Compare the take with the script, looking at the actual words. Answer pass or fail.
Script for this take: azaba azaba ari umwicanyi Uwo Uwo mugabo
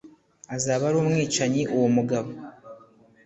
fail